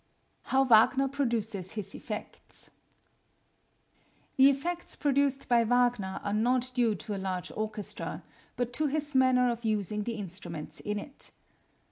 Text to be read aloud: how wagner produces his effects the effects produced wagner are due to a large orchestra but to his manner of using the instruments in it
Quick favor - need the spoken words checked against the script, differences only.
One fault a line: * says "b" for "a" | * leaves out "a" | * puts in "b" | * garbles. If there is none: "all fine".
* puts in "by"
* puts in "not"